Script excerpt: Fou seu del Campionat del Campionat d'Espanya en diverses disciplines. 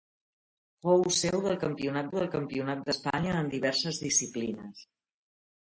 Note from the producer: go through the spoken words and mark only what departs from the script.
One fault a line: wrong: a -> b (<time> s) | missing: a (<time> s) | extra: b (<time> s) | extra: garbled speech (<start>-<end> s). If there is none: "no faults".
no faults